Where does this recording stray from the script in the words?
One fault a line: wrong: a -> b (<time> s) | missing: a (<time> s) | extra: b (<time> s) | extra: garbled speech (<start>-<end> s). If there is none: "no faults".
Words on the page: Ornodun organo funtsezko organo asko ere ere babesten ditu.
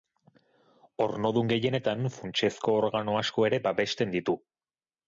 wrong: organo -> gehienetan (1.5 s)
missing: ere (3.6 s)